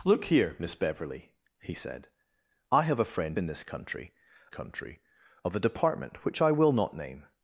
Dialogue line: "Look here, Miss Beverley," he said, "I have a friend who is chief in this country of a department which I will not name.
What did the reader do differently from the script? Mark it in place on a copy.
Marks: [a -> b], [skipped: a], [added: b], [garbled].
"Look here, Miss Beverley," he said, "I have a friend [skipped: who is chief] in this country [added: country] of a department which I will not name.